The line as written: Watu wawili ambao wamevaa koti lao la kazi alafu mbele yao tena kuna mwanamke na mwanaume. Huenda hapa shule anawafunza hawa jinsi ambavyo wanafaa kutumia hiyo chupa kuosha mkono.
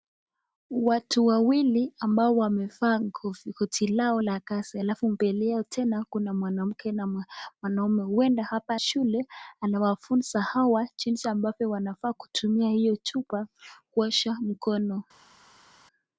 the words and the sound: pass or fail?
pass